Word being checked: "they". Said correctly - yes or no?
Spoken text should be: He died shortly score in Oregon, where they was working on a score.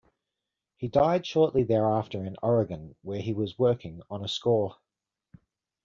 no